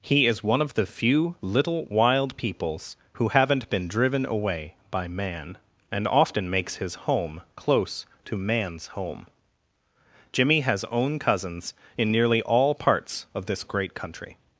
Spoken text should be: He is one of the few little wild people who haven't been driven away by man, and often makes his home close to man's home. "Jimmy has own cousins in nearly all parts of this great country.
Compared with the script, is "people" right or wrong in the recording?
wrong